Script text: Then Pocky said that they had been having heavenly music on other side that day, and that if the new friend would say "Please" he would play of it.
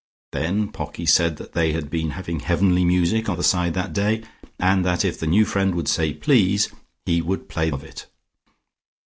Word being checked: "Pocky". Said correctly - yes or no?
yes